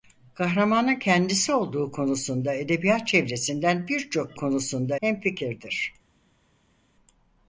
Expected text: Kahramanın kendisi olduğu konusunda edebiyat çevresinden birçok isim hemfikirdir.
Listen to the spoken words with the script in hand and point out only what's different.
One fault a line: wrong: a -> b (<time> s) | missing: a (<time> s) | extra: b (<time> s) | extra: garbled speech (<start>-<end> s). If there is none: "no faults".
wrong: isim -> konusunda (4.4 s)